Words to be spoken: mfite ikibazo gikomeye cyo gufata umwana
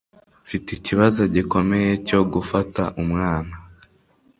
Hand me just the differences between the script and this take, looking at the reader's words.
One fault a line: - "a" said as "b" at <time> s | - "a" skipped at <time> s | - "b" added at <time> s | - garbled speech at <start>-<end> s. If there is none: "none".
none